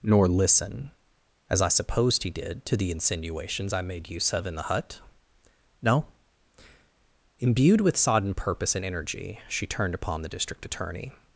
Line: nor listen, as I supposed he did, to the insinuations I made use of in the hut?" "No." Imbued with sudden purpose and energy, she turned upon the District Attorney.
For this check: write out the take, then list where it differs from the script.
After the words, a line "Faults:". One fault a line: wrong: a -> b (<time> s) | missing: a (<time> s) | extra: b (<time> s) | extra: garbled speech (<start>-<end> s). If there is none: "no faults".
nor listen, as I supposed he did, to the insinuations I made use of in the hut?" "No." Imbued with sodden purpose and energy, she turned upon the District Attorney.
Faults:
wrong: sudden -> sodden (8.0 s)